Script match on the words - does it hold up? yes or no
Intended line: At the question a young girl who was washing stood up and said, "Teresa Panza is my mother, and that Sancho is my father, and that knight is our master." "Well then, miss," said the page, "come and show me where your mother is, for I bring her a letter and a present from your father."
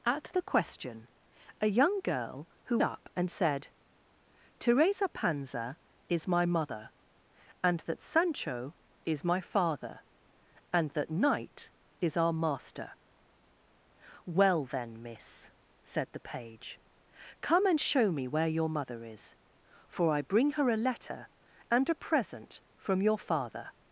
no